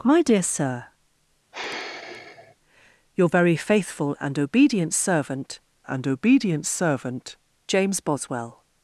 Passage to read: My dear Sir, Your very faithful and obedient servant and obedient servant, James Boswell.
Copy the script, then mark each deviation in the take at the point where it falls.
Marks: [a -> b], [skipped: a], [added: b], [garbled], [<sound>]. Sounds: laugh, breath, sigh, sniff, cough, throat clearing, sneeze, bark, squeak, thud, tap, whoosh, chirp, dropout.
My dear Sir, [sigh] Your very faithful and obedient servant and obedient servant, James Boswell.